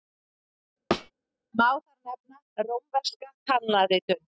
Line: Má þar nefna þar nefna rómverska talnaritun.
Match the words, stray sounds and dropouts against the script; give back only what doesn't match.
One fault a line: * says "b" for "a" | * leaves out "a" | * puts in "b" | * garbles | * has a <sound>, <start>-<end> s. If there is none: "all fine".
* has a thud, 0.9-1.1 s
* leaves out "þar nefna"